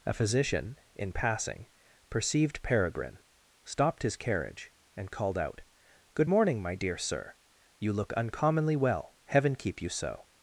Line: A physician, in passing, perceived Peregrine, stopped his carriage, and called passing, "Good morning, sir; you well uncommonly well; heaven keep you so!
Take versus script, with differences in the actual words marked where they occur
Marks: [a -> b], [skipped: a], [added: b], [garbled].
A physician, in passing, perceived Peregrine, stopped his carriage, and called [passing, -> out] "Good morning, [added: my dear] sir; you [well -> look] uncommonly well; heaven keep you so!